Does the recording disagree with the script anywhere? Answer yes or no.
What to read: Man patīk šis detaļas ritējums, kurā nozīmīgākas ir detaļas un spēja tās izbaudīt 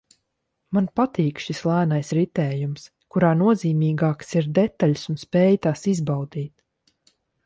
yes